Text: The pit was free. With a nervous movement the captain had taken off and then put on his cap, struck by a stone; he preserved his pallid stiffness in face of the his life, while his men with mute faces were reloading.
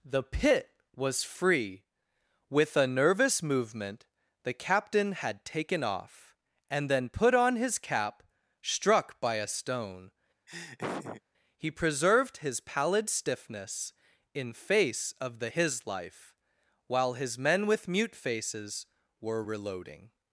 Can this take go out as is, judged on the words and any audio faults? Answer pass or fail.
fail